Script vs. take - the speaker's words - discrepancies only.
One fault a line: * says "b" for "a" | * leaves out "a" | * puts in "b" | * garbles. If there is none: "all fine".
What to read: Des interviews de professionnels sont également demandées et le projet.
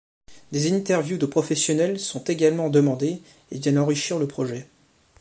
* puts in "viennent enrichir"